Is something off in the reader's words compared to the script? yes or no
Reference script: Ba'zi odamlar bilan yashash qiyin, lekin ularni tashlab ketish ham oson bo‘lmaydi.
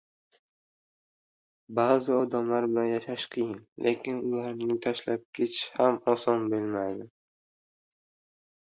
no